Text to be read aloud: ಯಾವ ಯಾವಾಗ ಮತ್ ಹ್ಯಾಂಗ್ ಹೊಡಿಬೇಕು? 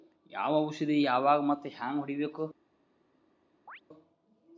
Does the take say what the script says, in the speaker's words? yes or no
no